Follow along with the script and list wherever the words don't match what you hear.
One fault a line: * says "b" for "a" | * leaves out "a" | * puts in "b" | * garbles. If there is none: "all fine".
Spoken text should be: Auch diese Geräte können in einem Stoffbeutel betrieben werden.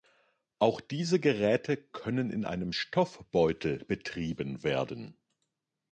all fine